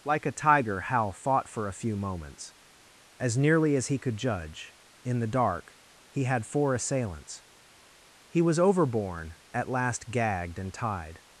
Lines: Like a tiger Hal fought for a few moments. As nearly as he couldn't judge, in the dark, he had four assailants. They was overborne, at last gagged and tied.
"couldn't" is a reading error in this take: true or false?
true